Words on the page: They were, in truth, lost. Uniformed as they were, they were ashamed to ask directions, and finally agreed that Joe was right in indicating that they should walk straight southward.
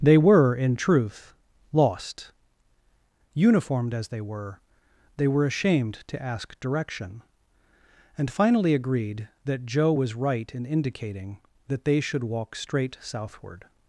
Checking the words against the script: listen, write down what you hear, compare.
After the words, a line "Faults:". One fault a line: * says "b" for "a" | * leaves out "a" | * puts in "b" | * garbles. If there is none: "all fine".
They were, in truth, lost. Uniformed as they were, they were ashamed to ask direction, and finally agreed that Joe was right in indicating that they should walk straight southward.
Faults:
* says "direction" for "directions"